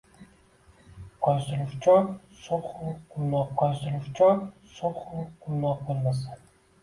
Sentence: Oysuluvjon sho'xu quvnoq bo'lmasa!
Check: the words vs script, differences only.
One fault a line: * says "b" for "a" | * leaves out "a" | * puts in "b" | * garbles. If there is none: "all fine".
* puts in "oysuluvjon sho'xu quvnoq"